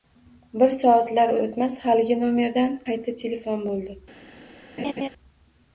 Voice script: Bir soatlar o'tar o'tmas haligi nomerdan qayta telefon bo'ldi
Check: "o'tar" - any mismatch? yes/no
yes